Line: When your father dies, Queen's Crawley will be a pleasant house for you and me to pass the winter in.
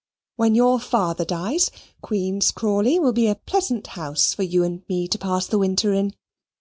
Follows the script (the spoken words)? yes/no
yes